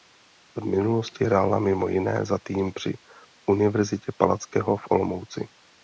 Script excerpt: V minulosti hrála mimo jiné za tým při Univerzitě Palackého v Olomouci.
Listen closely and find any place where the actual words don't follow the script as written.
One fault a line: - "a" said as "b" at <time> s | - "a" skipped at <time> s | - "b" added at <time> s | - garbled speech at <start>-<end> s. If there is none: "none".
none